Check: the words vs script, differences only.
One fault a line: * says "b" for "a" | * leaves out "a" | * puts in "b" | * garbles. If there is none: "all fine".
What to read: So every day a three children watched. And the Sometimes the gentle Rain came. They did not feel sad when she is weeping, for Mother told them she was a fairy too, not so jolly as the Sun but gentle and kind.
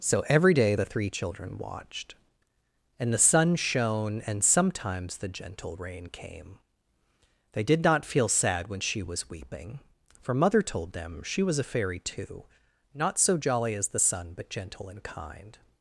* says "the" for "a"
* puts in "Sun shone and"
* says "was" for "is"